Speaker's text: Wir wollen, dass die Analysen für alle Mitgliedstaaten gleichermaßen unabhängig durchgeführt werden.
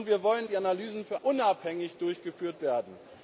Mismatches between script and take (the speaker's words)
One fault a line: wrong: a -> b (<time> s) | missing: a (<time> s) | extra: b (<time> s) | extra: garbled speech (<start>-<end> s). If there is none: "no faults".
missing: dass (0.5 s)
missing: alle Mitgliedstaaten gleichermaßen (1.2 s)